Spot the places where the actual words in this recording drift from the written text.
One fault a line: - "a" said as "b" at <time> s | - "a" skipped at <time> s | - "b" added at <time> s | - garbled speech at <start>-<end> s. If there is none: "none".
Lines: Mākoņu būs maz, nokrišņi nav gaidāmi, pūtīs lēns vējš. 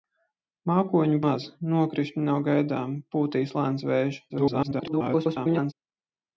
- "būs" skipped at 1.2 s
- garbled speech at 4.3-5.7 s